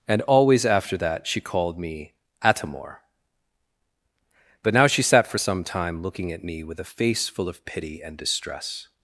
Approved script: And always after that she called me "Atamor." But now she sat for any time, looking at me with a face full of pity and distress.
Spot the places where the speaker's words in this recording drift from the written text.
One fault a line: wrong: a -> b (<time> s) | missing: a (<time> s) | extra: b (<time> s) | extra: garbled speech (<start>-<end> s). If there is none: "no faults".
wrong: any -> some (5.4 s)